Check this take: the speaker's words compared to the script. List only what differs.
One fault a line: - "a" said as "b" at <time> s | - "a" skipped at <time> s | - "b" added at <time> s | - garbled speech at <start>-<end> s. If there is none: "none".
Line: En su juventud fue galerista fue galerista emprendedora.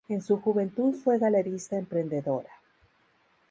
- "fue galerista" skipped at 1.8 s